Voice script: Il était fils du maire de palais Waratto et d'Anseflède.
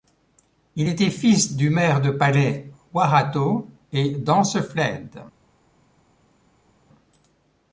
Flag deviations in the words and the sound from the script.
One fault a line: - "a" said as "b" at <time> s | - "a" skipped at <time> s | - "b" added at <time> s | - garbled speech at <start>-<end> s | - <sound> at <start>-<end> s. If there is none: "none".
none